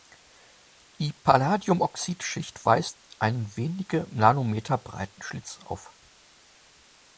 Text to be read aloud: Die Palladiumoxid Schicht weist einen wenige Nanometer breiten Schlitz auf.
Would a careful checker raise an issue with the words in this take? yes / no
no